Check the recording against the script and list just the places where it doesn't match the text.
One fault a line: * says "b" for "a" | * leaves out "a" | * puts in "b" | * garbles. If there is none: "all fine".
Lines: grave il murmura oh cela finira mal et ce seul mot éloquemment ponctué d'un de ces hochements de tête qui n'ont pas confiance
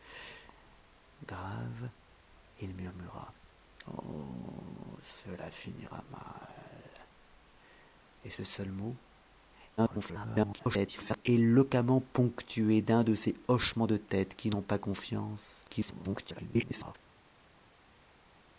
* garbles
* garbles